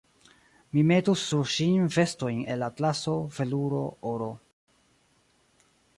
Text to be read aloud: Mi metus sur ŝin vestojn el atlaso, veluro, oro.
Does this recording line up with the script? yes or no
yes